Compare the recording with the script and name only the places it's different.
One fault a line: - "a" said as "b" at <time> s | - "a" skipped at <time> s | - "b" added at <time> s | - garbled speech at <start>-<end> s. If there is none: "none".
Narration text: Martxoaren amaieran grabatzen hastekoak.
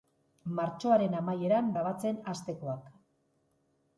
none